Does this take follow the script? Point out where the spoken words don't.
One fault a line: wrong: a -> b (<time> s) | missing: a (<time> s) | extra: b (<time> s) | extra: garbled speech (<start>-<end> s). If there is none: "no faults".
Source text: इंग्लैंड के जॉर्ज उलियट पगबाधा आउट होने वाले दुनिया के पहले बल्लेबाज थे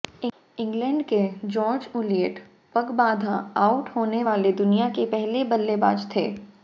no faults